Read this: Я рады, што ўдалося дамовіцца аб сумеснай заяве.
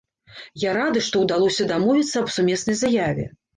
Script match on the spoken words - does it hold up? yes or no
yes